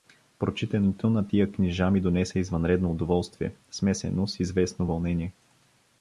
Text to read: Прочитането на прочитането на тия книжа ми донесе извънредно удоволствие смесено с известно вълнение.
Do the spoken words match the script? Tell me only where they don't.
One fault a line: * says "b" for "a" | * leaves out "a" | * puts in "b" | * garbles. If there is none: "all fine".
* leaves out "прочитането на"